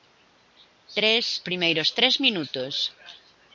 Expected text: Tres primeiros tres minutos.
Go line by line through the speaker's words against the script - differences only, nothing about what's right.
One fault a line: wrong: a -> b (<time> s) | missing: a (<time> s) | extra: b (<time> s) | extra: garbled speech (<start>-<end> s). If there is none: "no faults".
no faults